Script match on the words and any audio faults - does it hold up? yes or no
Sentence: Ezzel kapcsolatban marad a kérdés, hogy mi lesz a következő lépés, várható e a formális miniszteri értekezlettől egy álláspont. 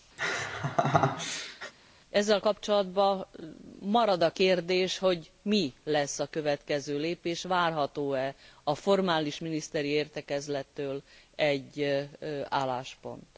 no